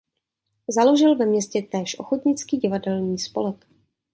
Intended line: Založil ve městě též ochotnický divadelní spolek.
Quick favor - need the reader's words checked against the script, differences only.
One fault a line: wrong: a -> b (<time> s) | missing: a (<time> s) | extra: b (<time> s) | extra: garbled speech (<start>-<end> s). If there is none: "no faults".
no faults